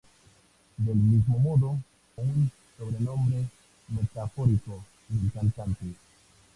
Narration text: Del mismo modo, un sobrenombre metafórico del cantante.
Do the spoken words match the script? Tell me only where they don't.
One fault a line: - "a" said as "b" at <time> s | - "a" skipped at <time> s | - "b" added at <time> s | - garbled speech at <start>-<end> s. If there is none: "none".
none